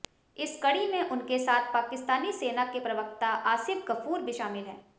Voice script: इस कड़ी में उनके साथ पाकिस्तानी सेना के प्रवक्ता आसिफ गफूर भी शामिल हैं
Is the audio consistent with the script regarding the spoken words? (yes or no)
yes